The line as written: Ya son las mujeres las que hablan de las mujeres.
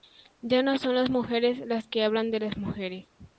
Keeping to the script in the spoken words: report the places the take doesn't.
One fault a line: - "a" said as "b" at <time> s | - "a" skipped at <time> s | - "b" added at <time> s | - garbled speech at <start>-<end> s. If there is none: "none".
- "no" added at 0.6 s